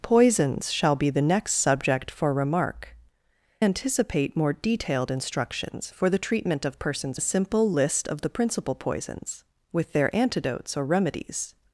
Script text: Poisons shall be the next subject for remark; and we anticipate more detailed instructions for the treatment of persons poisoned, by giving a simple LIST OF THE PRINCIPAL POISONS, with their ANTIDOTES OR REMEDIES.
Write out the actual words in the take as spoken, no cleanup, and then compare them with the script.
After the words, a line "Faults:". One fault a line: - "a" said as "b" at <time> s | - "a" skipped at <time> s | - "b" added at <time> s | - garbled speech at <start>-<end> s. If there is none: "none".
Poisons shall be the next subject for remark; anticipate more detailed instructions for the treatment of persons a simple LIST OF THE PRINCIPAL POISONS, with their ANTIDOTES OR REMEDIES.
Faults:
- "and we" skipped at 3.0 s
- "poisoned by giving" skipped at 7.2 s